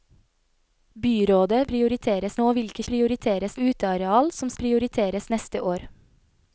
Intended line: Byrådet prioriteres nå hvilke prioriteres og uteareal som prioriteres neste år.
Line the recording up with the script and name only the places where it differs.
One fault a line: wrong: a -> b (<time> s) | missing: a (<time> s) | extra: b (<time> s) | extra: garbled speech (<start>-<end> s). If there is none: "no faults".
no faults